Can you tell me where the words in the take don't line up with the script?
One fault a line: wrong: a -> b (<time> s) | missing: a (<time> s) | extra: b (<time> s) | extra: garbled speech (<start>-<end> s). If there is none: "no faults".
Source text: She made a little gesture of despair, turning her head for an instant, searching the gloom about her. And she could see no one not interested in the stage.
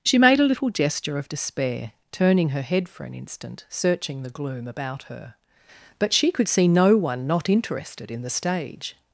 wrong: And -> But (6.0 s)